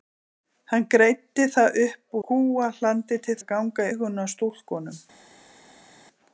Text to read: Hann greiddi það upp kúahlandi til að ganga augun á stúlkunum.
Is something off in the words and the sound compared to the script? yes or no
no